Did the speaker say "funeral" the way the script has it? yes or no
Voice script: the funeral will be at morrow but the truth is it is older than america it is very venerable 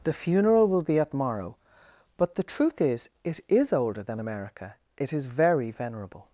yes